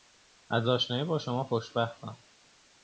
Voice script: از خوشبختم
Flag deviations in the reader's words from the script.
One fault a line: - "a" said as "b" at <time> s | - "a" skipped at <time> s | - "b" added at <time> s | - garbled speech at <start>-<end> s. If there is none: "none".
- "آشنایی با شما" added at 0.7 s